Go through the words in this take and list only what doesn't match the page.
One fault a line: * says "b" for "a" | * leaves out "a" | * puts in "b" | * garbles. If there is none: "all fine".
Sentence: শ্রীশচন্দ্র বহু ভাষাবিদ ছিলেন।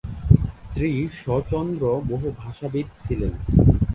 all fine